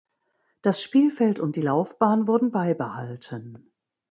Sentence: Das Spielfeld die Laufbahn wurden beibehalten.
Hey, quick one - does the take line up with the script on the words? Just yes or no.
no